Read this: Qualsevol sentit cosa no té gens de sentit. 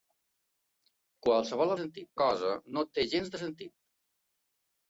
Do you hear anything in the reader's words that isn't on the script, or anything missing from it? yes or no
no